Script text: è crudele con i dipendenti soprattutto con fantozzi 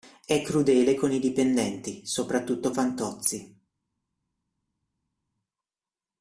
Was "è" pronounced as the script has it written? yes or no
yes